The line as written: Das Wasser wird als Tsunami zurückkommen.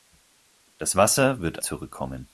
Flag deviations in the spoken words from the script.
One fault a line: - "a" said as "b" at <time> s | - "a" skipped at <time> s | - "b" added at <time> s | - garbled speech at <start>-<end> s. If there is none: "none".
- "als Tsunami" skipped at 1.6 s